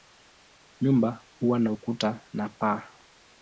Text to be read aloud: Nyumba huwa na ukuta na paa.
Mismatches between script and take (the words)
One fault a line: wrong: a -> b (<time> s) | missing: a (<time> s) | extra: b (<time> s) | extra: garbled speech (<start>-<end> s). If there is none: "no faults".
no faults